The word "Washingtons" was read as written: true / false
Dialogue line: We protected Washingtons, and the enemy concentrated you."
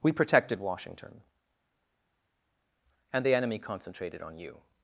false